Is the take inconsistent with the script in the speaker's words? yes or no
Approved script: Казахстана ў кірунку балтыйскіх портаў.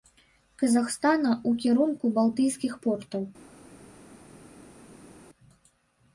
no